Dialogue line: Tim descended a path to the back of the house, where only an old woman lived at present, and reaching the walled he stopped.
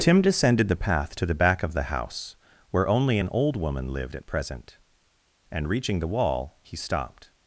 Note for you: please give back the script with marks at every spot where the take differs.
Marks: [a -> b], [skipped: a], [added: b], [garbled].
Tim descended [a -> the] path to the back of the house, where only an old woman lived at present, and reaching the [walled -> wall] he stopped.